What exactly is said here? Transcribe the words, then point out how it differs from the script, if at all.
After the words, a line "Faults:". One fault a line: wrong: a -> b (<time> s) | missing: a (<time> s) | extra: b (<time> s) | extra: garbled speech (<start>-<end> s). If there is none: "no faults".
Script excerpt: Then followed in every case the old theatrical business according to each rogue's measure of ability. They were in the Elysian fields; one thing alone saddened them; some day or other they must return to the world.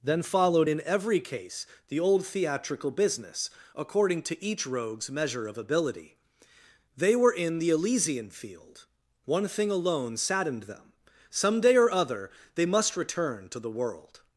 Then followed in every case the old theatrical business according to each rogue's measure of ability. They were in the Elysian field; one thing alone saddened them; some day or other they must return to the world.
Faults:
wrong: fields -> field (8.3 s)